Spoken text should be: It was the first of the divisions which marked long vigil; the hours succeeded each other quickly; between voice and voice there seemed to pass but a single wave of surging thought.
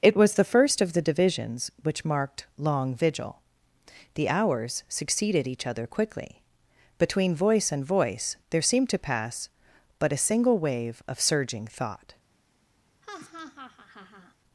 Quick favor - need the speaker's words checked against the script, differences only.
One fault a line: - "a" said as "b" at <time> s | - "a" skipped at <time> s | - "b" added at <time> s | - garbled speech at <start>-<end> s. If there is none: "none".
none